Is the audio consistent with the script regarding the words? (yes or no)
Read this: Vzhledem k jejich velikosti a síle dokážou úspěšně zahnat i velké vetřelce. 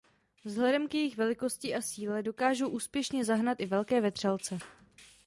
yes